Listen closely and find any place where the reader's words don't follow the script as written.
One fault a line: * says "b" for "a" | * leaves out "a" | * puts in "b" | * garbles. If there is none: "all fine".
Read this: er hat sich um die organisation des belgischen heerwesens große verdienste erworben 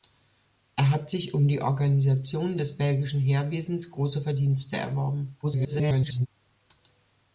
* garbles